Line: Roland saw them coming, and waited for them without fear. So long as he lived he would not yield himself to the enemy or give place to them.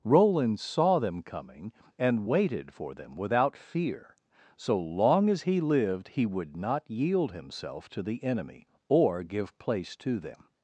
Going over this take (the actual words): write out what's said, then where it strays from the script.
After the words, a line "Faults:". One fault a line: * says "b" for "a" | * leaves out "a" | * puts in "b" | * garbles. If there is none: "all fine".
Roland saw them coming, and waited for them without fear. So long as he lived he would not yield himself to the enemy or give place to them.
Faults:
all fine